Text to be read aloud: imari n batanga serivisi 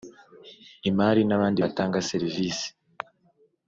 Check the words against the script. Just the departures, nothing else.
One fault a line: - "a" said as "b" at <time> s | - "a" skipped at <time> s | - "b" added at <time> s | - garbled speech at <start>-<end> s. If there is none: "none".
- "abandi" added at 1.4 s